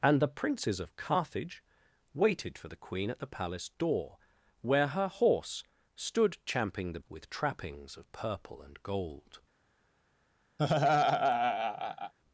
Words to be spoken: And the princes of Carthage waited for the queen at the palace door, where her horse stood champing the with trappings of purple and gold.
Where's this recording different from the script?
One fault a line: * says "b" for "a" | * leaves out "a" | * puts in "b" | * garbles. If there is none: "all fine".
all fine